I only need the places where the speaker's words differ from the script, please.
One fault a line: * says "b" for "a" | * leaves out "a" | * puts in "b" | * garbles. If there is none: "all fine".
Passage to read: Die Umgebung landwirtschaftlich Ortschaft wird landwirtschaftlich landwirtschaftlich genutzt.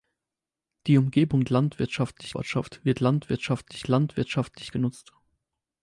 all fine